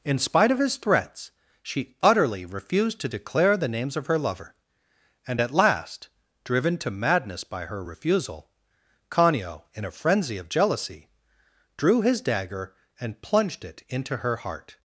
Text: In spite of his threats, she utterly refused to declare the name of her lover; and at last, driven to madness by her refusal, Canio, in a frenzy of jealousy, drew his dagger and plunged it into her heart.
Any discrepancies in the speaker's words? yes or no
yes